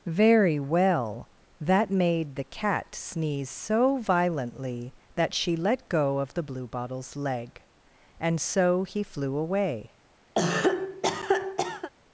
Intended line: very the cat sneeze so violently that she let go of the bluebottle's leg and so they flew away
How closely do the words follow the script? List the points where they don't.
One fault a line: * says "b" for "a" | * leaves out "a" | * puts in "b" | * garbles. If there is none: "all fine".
* puts in "well that made"
* says "he" for "they"